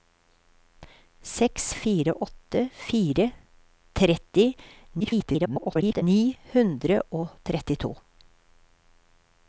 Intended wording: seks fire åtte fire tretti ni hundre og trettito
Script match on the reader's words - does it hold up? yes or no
no